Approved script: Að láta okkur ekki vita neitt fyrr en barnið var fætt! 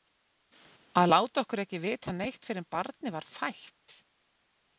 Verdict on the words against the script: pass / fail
pass